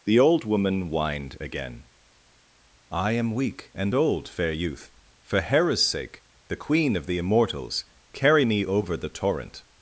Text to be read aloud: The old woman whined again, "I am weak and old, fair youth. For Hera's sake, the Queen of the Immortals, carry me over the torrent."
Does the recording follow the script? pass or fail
pass